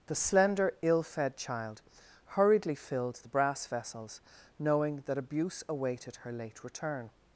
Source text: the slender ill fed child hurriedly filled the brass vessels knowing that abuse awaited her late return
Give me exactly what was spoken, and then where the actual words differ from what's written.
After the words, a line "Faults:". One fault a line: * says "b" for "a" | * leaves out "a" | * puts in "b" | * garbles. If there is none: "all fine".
the slender ill fed child hurriedly filled the brass vessels knowing that abuse awaited her late return
Faults:
all fine